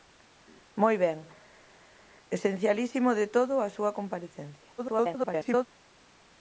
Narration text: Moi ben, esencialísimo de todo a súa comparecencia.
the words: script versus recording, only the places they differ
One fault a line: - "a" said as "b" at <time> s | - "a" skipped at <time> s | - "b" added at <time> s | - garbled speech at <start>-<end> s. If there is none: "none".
- garbled speech at 4.8-5.7 s